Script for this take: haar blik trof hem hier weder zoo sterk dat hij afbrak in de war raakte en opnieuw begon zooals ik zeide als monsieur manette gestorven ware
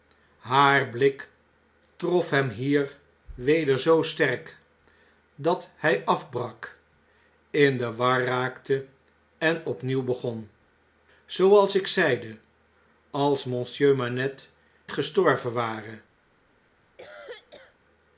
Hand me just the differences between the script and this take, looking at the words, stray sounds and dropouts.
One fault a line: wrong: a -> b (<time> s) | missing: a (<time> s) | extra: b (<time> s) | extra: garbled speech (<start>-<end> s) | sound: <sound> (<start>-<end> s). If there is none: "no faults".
sound: cough (17.0-17.8 s)